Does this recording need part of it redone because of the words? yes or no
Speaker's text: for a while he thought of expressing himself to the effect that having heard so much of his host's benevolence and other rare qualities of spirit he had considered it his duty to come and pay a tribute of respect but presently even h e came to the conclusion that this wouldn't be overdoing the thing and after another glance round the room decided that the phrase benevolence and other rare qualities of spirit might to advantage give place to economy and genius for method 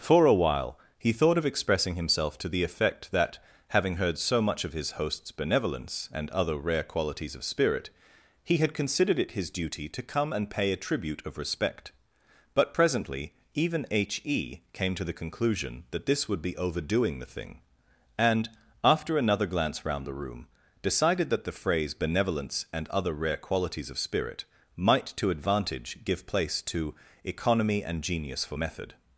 yes